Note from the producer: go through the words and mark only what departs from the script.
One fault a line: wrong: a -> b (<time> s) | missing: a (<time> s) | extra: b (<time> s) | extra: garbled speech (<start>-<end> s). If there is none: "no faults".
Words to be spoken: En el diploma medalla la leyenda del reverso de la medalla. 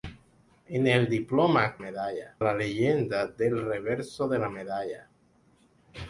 no faults